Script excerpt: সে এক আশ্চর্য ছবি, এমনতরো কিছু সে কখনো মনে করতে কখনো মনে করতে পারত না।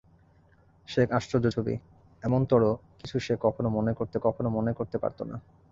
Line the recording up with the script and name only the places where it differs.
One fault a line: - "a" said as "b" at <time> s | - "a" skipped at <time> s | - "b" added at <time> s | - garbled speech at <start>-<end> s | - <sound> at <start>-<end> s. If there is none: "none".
none